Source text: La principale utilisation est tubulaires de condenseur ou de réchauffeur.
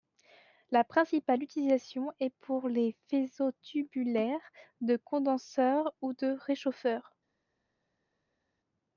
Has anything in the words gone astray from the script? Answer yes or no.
yes